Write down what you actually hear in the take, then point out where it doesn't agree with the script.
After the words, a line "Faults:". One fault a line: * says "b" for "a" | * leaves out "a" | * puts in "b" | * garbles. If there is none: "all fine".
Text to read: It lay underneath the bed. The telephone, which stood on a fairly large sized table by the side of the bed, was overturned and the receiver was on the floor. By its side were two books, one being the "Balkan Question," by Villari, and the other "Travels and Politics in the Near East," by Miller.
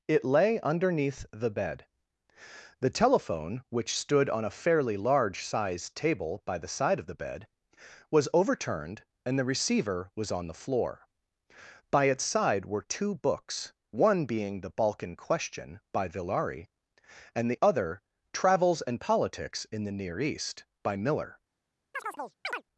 It lay underneath the bed. The telephone, which stood on a fairly large sized table by the side of the bed, was overturned and the receiver was on the floor. By its side were two books, one being the "Balkan Question," by Villari, and the other "Travels and Politics in the Near East," by Miller.
Faults:
all fine